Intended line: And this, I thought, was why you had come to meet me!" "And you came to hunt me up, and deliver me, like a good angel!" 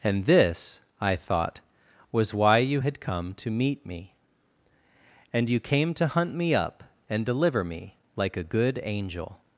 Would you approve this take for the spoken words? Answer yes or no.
yes